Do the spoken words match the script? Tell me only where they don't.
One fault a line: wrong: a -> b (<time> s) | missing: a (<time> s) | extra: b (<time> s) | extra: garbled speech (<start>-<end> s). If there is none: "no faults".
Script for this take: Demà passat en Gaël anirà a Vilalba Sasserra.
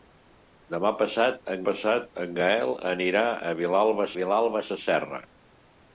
extra: passat en (1.7 s)
extra: Vilalba (4.2 s)